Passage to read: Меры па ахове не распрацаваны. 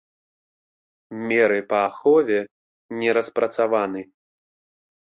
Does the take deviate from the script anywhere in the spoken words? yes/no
no